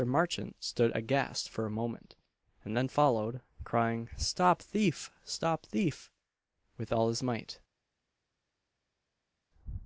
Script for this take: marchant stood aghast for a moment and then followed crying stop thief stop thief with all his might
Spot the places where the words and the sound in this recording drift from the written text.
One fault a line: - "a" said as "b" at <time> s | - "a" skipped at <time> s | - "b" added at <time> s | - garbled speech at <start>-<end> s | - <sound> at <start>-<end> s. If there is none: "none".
none